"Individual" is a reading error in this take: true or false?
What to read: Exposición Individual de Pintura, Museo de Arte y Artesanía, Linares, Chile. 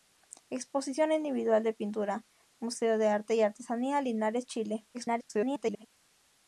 false